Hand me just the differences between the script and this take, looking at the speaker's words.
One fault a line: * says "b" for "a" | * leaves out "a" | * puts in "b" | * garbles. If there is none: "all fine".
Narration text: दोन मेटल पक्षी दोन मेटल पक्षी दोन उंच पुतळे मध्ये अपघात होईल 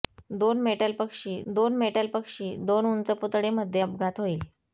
all fine